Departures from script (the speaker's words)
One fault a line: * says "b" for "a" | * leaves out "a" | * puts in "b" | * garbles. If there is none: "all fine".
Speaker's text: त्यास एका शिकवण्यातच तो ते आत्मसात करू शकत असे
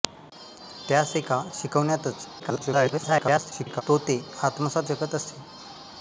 * garbles
* leaves out "करू"